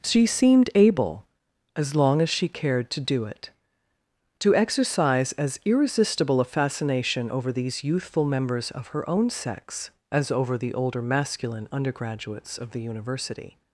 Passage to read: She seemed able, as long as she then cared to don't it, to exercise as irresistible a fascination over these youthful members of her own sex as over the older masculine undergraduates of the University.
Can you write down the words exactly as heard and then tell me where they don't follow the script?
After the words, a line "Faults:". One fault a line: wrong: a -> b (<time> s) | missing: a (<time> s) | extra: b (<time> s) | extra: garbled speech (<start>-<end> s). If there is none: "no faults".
She seemed able, as long as she cared to do it, to exercise as irresistible a fascination over these youthful members of her own sex as over the older masculine undergraduates of the University.
Faults:
missing: then (2.5 s)
wrong: don't -> do (3.0 s)